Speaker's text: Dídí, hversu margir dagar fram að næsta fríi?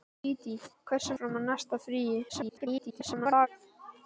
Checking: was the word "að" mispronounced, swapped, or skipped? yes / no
no